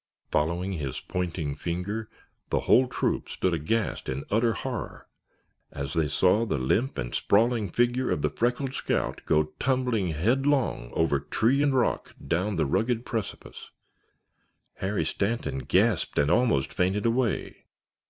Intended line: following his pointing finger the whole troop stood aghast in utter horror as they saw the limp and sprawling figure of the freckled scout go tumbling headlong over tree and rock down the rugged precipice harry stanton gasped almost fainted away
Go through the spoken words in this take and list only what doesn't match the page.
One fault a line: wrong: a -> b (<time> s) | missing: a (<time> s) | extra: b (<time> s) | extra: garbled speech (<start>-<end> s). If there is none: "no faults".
extra: and (16.2 s)